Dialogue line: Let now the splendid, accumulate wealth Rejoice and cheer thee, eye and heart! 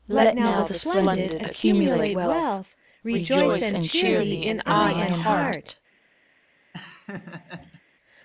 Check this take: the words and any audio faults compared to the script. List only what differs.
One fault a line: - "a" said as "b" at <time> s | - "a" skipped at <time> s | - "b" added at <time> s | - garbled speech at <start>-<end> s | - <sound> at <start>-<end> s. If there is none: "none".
- "in" added at 4.5 s
- laugh at 6.7-7.8 s